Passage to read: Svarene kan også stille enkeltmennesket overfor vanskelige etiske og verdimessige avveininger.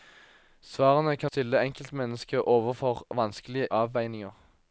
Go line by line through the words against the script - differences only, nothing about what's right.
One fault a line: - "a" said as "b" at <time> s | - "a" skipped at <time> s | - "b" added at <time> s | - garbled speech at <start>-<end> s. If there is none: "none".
- "også" skipped at 1.3 s
- "etiske og verdimessige" skipped at 3.7 s